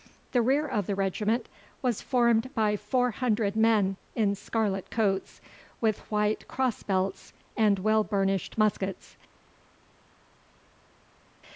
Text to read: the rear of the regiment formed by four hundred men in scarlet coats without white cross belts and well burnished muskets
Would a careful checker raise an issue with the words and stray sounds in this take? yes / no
yes